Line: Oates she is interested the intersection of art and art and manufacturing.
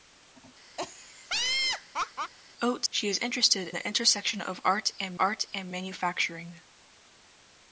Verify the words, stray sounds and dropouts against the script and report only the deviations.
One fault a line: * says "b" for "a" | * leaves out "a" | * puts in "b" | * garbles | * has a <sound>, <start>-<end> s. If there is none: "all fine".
* has a laugh, 0.8-2.3 s